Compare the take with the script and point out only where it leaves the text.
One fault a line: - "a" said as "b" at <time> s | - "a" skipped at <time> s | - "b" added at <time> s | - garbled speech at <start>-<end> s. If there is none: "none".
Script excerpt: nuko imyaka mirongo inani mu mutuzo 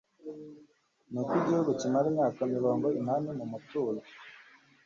- "igihugu kimara" added at 1.4 s